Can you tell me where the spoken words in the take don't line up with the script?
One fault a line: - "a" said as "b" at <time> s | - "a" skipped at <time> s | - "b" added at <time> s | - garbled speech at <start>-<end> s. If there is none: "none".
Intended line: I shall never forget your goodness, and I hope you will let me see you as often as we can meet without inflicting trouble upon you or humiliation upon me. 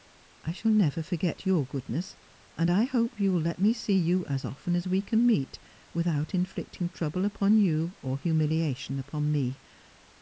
none